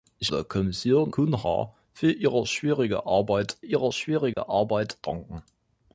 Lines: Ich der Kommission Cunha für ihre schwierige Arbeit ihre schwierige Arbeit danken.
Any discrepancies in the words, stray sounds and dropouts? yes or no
yes